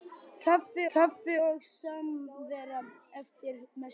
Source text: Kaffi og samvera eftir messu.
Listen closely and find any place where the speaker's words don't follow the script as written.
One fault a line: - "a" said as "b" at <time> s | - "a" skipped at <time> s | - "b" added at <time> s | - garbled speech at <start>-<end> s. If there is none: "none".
- "kaffi" added at 0.9 s